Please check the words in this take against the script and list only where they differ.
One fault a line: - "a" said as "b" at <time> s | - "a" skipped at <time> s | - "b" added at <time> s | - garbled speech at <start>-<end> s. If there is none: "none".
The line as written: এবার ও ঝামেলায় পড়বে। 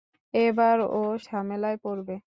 none